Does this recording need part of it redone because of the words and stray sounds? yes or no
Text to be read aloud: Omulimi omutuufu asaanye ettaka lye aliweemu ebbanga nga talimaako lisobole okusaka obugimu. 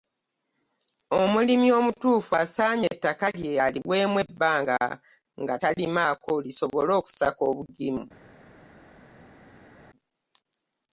no